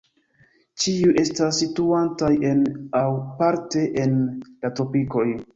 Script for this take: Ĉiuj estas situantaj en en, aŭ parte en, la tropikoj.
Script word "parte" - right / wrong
right